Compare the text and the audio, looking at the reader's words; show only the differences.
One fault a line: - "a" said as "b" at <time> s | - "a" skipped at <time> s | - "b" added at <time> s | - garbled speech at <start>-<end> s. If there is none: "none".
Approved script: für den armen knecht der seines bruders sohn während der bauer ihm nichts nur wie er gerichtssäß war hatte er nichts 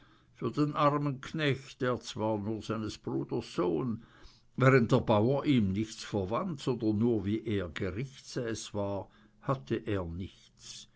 - "zwar nur" added at 2.0 s
- "verwandt sondern" added at 6.0 s